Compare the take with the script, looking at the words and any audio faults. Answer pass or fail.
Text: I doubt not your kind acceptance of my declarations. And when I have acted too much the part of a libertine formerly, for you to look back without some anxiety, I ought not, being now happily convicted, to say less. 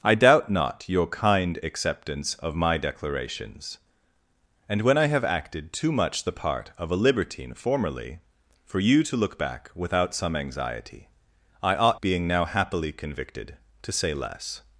fail